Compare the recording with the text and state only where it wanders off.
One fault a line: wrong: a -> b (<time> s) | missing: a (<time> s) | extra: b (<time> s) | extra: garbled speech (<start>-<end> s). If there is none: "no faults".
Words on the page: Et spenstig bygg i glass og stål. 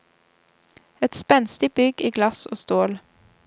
no faults